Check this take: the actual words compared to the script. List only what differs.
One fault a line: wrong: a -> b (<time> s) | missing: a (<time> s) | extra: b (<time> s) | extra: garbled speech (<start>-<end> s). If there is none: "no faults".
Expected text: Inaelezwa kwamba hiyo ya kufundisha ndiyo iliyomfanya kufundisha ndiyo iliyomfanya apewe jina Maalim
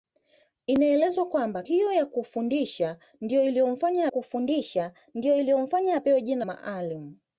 no faults